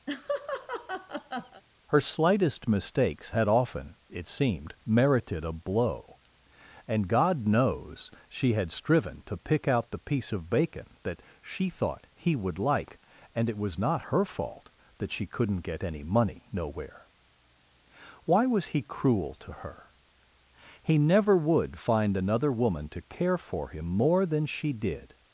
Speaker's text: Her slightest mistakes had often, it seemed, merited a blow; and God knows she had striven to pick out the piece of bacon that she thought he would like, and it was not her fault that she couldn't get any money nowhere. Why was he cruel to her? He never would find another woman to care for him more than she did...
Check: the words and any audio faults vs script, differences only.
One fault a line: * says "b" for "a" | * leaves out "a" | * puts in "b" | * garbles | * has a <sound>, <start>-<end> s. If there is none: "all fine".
* has a laugh, 0.1-1.6 s